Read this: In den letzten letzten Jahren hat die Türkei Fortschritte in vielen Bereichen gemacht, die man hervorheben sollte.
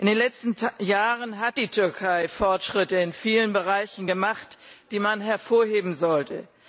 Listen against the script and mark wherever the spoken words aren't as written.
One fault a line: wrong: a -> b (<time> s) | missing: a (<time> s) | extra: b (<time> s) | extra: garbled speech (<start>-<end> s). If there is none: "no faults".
missing: letzten (0.6 s)